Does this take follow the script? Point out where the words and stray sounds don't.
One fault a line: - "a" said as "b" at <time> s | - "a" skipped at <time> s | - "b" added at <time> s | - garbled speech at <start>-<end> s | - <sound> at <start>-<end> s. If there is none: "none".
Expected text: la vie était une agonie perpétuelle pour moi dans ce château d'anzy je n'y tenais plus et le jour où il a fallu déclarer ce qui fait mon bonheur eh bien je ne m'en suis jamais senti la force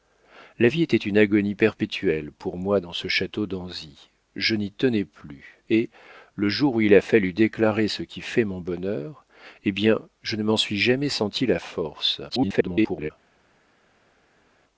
- garbled speech at 12.3-13.1 s